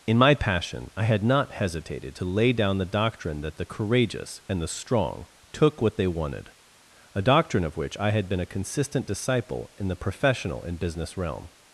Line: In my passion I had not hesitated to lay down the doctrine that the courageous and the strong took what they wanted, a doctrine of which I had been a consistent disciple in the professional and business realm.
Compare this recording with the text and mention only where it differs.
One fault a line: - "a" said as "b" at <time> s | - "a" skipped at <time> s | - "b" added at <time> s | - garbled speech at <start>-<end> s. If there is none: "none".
none